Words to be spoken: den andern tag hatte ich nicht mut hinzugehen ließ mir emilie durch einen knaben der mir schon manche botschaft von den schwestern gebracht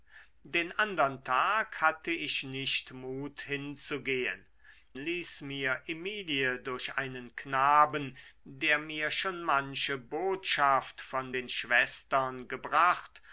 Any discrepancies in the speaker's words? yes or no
no